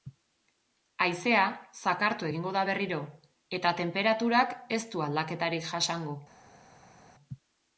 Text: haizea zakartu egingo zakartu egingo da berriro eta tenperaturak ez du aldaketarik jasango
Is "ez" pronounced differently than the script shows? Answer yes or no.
no